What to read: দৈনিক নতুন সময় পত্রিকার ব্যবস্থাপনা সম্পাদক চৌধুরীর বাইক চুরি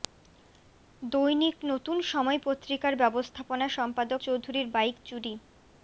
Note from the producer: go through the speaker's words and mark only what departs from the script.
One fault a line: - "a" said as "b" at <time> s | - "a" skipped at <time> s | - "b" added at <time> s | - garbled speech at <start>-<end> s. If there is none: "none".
none